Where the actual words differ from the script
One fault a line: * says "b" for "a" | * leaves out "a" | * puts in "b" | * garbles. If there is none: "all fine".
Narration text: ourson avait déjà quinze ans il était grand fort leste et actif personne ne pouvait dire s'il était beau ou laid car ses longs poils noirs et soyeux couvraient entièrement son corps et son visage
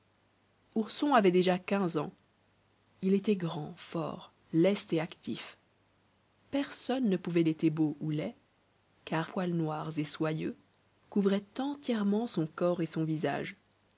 * leaves out "dire s'il"
* leaves out "ses longs"